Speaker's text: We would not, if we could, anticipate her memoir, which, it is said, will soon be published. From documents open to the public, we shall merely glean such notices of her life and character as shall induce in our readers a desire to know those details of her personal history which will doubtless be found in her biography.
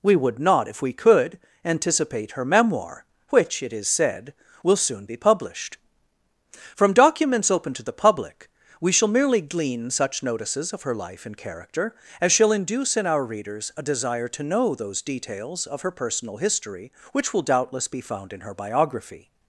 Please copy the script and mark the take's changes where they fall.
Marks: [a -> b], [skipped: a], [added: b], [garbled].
We would not, if we could, anticipate her memoir, which, it is said, will soon be published. From documents open to the public, we shall merely glean such notices of her life and character as shall induce in our readers a desire to know those details of her personal history which will doubtless be found in her biography.